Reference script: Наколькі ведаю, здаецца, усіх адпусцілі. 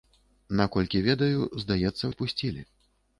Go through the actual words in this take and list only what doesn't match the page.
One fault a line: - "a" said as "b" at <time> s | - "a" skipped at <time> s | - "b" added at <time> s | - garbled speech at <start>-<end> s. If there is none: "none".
- "усіх" skipped at 2.0 s